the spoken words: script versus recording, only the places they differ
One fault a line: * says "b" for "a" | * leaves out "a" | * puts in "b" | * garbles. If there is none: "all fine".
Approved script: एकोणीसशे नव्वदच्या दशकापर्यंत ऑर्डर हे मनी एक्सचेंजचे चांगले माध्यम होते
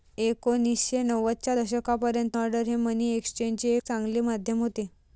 all fine